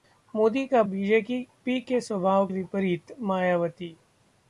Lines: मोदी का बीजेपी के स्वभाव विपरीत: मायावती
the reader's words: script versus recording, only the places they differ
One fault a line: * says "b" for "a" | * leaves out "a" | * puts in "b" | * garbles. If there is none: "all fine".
all fine